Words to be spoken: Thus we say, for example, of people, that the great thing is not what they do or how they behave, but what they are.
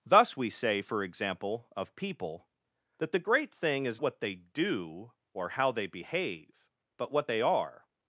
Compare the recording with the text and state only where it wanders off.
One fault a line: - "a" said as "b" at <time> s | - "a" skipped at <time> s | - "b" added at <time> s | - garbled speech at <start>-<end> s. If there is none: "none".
- "not" skipped at 4.0 s